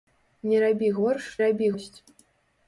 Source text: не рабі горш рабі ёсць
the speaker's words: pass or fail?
pass